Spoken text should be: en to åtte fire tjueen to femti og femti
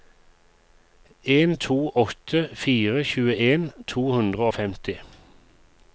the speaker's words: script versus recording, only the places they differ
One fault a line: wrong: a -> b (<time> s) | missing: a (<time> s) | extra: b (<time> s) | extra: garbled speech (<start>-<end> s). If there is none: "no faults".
wrong: femti -> hundre (4.2 s)